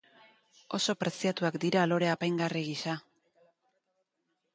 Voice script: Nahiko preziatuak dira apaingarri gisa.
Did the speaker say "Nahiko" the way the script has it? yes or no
no